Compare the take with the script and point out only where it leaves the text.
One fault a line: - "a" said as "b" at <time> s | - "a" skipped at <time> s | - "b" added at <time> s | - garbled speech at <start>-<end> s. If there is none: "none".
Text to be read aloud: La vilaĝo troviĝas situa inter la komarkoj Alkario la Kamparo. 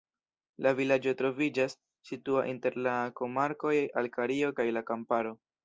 - "kaj" added at 4.6 s